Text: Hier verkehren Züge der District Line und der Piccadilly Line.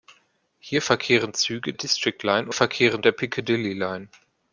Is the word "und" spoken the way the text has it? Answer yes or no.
no